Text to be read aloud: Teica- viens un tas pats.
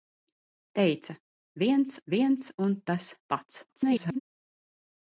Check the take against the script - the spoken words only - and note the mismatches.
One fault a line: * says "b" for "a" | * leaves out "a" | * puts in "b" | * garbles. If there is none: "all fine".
* puts in "viens"
* garbles